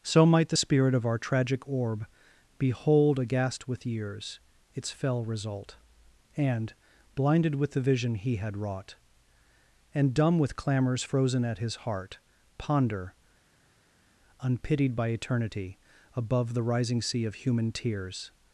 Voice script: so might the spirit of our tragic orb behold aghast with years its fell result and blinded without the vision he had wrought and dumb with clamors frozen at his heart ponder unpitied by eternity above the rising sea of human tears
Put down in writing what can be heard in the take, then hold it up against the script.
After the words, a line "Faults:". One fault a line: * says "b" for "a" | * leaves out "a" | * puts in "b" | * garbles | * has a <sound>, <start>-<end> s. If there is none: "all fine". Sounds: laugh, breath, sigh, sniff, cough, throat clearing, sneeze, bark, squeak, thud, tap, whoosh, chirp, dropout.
so might the spirit of our tragic orb behold aghast with years its fell result and blinded with the vision he had wrought and dumb with clamors frozen at his heart ponder unpitied by eternity above the rising sea of human tears
Faults:
* says "with" for "without"